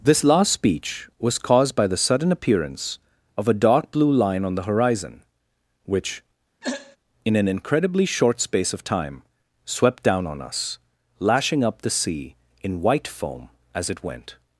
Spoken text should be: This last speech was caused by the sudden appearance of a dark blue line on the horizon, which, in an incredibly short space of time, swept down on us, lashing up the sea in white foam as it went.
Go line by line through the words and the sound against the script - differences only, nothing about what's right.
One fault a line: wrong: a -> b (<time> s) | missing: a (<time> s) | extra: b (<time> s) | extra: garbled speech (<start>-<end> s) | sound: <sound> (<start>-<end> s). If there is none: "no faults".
sound: throat clearing (6.6-7.0 s)